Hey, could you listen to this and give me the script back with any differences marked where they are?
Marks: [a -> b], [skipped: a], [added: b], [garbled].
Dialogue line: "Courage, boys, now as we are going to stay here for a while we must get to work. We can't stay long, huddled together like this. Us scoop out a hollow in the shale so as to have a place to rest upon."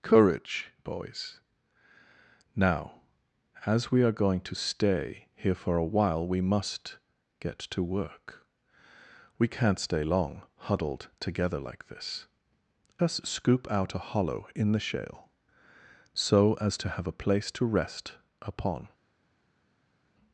"Courage, boys, now as we are going to stay here for a while we must get to work. We can't stay long, huddled together like this. Us scoop out a hollow in the shale so as to have a place to rest upon."